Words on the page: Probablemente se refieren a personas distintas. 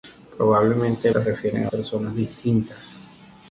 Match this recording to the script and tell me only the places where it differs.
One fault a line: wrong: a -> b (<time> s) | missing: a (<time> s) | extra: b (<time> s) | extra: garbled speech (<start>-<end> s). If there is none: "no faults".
no faults